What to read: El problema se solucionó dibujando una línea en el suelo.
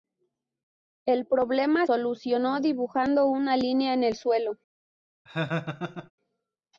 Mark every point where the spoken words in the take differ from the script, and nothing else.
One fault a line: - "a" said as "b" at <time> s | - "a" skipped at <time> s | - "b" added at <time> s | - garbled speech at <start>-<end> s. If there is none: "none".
- "se" skipped at 1.9 s